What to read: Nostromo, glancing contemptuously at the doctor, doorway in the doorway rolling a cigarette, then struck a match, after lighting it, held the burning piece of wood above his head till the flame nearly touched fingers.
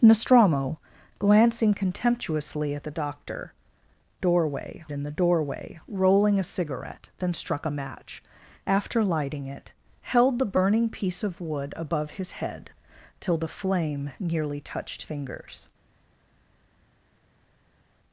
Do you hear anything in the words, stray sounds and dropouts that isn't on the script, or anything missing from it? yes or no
no